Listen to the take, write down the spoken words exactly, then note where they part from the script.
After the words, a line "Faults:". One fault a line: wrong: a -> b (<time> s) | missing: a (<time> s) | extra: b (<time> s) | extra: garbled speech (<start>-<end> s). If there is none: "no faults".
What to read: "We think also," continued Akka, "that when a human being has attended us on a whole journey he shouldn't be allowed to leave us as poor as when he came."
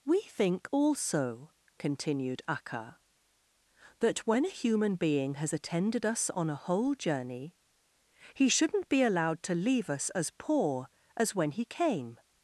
"We think also," continued Akka, "that when a human being has attended us on a whole journey he shouldn't be allowed to leave us as poor as when he came."
Faults:
no faults